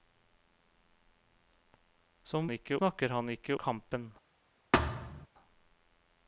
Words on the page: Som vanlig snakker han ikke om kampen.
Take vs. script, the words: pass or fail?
fail